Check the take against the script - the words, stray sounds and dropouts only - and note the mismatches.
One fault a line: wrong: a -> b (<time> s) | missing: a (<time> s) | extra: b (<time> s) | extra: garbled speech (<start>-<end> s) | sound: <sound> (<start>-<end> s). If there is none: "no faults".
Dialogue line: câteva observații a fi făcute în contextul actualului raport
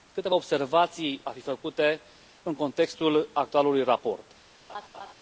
sound: laugh (4.7-5.1 s)